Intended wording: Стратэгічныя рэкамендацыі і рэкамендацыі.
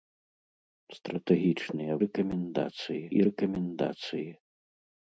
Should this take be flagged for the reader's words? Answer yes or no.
no